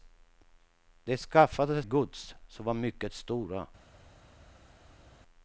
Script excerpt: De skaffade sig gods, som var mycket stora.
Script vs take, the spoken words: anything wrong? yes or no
yes